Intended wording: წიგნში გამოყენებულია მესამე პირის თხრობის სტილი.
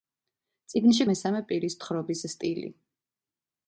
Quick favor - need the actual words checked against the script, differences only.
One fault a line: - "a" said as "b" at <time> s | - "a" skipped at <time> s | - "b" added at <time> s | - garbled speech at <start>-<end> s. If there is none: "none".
- "გამოყენებულია" skipped at 1.1 s